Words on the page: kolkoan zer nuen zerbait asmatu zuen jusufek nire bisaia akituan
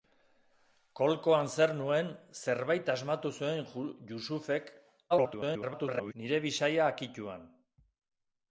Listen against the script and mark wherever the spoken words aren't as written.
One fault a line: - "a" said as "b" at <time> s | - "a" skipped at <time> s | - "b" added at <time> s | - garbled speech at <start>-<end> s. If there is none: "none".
- garbled speech at 5.1-6.1 s